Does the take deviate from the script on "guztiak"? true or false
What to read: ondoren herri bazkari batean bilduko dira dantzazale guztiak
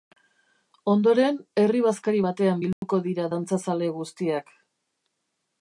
false